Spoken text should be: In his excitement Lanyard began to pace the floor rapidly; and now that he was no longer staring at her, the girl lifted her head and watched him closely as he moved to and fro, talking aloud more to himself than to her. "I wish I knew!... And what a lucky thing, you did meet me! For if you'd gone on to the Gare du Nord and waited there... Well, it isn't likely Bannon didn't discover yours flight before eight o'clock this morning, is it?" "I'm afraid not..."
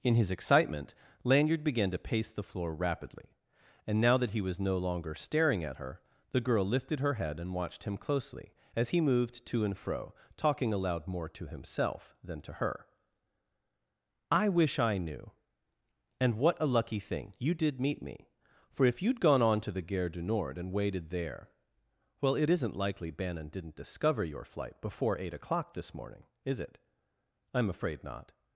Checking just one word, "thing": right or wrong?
right